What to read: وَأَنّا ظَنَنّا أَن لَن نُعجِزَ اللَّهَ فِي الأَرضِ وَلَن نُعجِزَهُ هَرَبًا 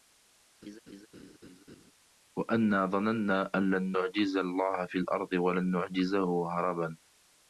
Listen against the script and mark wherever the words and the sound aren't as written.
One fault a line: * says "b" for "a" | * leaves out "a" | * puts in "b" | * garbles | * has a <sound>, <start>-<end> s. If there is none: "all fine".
* has a laugh, 0.6-1.9 s